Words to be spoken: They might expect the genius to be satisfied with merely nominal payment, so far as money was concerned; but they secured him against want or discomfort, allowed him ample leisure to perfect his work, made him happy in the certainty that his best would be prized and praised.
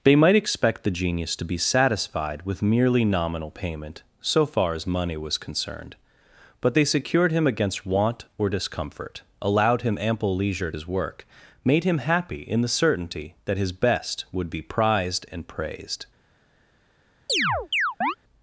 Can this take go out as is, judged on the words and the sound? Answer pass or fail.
fail